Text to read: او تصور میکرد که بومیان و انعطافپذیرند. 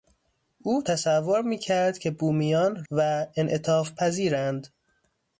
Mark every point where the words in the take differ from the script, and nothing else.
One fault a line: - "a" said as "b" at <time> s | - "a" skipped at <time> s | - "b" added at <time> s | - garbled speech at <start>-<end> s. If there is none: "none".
none